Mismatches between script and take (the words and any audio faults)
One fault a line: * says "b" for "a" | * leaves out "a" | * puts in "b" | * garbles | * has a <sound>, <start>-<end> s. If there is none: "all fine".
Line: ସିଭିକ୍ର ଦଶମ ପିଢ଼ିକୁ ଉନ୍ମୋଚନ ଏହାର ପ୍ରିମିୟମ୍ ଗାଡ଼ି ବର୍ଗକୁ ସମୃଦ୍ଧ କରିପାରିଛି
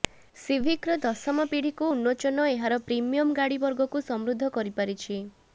all fine